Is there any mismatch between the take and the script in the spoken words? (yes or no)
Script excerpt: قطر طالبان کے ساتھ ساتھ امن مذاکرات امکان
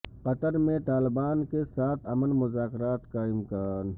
yes